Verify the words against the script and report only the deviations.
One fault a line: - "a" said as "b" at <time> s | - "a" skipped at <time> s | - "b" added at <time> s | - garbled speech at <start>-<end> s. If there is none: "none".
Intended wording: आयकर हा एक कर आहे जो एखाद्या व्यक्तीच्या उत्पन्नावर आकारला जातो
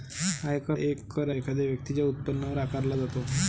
- "हा" skipped at 0.8 s
- "आहे जो" skipped at 1.3 s